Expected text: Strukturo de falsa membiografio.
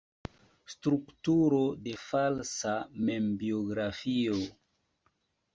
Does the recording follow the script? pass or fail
pass